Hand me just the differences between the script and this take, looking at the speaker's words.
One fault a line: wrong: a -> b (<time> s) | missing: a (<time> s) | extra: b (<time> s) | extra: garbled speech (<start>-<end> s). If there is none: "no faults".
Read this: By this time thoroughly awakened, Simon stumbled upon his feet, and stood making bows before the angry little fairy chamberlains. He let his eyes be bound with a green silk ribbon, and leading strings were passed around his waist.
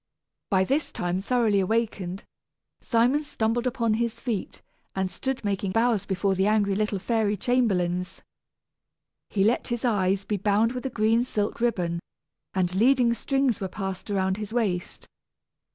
no faults